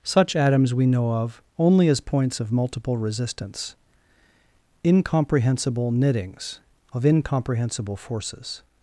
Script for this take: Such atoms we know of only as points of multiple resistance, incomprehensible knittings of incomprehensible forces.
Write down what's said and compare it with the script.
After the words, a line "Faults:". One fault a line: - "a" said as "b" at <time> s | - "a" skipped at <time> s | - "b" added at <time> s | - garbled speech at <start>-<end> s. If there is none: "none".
Such atoms we know of only as points of multiple resistance, incomprehensible knittings of incomprehensible forces.
Faults:
none